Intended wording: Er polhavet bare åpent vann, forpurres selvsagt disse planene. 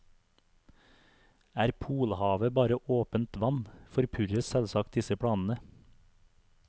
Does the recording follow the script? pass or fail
pass